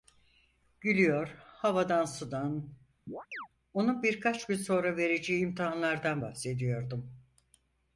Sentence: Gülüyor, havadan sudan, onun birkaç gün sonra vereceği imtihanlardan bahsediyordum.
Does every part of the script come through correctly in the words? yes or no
yes